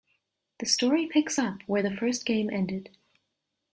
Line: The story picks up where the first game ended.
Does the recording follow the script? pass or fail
pass